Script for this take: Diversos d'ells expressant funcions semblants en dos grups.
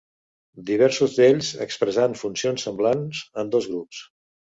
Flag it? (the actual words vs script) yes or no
no